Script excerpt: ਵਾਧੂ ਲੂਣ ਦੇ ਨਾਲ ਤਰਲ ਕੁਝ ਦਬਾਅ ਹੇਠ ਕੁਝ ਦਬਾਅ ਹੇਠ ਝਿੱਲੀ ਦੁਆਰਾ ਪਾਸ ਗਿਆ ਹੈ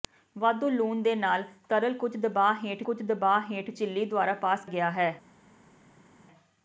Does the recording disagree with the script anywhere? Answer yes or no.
no